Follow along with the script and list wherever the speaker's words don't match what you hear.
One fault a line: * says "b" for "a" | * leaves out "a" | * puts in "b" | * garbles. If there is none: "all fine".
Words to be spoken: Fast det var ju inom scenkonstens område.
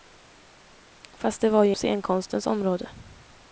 * leaves out "inom"